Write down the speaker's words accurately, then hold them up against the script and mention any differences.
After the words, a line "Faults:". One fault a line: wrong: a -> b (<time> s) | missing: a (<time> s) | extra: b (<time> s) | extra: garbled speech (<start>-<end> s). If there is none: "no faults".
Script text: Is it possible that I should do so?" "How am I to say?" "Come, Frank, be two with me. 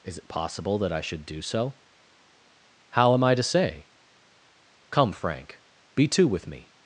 Is it possible that I should do so?" "How am I to say?" "Come, Frank, be two with me.
Faults:
no faults